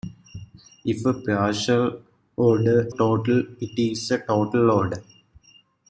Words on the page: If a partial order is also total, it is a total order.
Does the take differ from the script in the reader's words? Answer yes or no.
yes